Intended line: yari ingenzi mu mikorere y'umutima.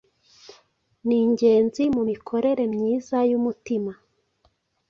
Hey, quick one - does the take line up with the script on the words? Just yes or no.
no